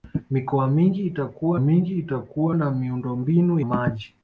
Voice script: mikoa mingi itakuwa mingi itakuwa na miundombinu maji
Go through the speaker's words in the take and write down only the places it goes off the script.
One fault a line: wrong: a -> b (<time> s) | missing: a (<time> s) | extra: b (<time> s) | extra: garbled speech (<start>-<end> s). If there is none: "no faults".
no faults